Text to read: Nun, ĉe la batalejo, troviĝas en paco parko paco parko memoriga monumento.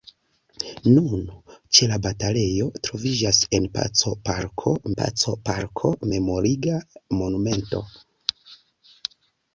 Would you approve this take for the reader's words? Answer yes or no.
yes